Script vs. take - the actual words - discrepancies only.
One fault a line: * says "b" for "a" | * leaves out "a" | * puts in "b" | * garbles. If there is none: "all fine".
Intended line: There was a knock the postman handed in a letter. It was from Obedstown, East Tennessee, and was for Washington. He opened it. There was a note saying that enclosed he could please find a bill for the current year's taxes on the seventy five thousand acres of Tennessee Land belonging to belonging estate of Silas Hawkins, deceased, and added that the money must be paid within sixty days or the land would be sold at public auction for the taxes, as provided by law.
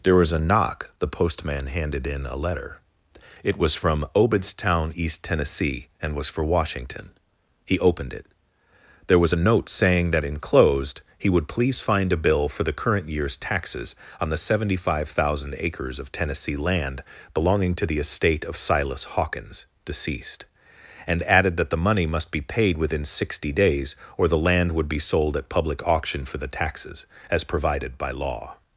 * says "would" for "could"
* says "the" for "belonging"